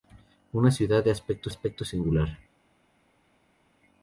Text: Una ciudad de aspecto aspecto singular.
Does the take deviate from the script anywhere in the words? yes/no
no